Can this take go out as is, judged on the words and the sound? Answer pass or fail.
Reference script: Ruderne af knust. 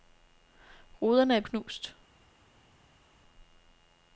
pass